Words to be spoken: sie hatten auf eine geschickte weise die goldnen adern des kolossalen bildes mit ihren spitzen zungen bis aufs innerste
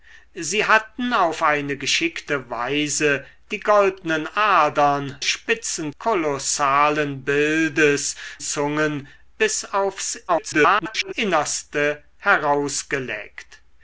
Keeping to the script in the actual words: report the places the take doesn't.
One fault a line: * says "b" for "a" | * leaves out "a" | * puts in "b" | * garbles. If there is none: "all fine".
* says "spitzen" for "des"
* leaves out "mit ihren spitzen"
* garbles